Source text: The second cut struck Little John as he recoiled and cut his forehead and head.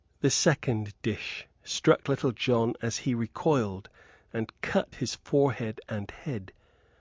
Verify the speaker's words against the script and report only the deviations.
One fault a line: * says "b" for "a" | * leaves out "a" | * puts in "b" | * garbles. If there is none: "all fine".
* says "dish" for "cut"